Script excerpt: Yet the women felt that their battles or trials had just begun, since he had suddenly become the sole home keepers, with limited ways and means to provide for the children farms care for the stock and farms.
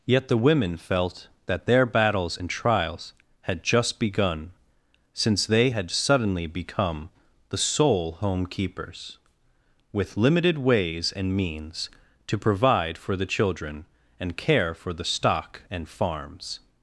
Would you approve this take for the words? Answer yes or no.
no